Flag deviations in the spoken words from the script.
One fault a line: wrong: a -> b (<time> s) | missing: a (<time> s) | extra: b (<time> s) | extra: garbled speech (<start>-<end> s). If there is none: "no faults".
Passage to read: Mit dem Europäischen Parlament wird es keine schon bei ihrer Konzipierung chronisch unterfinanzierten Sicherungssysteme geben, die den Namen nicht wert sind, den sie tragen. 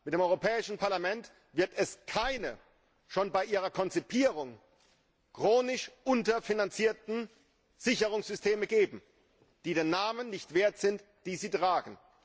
no faults